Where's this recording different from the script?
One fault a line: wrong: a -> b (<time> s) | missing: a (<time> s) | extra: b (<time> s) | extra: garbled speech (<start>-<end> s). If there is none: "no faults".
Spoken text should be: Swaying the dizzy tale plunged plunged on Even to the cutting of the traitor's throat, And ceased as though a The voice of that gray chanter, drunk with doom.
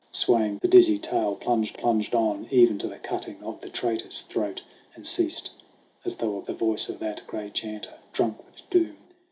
no faults